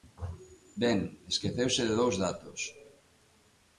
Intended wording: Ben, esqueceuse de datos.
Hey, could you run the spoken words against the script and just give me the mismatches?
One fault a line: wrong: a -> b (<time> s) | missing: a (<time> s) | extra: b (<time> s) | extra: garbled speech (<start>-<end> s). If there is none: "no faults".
extra: dous (2.0 s)